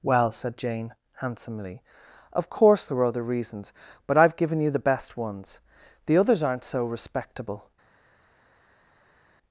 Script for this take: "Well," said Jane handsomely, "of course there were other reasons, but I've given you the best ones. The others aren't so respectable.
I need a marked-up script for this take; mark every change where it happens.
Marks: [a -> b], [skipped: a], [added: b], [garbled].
"Well," said Jane handsomely, "of course there were other reasons, but I've given you the best ones. The others aren't so respectable.